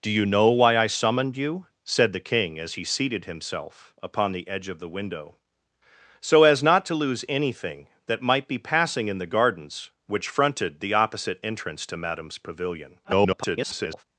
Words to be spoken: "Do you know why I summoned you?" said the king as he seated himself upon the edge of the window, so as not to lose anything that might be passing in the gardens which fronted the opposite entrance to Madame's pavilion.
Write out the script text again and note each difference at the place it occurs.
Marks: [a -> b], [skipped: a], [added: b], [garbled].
"Do you know why I summoned you?" said the king as he seated himself upon the edge of the window, so as not to lose anything that might be passing in the gardens which fronted the opposite entrance to Madame's pavilion. [garbled]